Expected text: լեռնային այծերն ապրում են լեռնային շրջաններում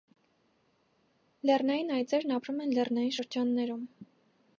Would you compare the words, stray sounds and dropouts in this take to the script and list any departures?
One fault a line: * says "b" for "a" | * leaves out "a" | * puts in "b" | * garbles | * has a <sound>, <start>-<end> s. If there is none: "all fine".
all fine